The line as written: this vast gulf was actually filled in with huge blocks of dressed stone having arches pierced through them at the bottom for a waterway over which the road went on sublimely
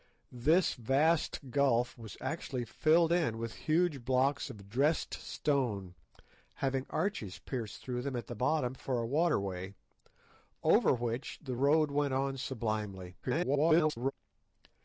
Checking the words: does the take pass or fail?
fail